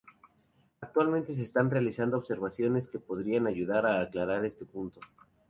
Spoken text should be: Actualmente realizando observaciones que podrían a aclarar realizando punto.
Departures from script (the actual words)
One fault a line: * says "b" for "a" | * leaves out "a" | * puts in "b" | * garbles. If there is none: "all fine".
* puts in "se están"
* puts in "ayudar"
* says "este" for "realizando"